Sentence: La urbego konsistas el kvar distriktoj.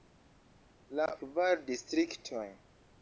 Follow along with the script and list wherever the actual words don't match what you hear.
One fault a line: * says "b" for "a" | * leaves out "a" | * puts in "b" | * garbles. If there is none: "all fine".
* leaves out "urbego konsistas el"